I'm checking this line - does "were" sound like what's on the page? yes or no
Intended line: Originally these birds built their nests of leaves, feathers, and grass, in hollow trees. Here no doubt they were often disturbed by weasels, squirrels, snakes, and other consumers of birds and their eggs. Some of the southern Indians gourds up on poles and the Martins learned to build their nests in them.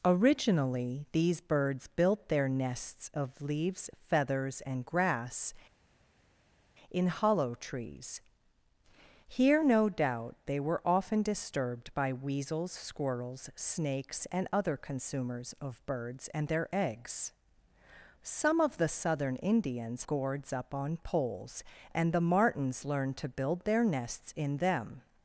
yes